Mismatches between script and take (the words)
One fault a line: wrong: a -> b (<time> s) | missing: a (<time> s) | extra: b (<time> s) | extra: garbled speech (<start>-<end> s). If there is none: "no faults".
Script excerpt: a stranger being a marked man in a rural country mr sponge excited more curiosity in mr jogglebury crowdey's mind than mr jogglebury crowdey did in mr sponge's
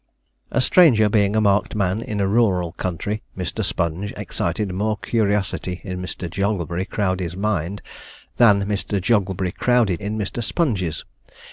missing: did (10.0 s)